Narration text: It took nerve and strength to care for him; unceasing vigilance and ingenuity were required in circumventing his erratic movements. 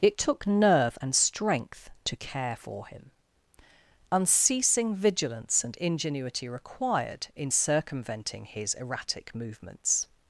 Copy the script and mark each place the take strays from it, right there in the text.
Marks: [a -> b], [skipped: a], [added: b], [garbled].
It took nerve and strength to care for him; unceasing vigilance and ingenuity [skipped: were] required in circumventing his erratic movements.